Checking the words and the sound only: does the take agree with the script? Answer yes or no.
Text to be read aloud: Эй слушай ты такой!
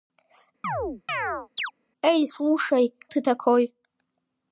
no